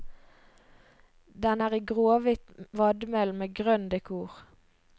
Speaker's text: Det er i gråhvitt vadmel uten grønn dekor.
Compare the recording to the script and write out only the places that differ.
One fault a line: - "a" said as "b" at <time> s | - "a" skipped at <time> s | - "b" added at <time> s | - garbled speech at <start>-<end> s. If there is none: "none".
- "Det" said as "Den" at 1.4 s
- "uten" said as "med" at 3.4 s